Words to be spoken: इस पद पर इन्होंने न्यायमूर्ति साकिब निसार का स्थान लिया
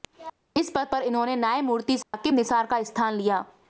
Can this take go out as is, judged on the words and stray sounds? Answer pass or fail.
fail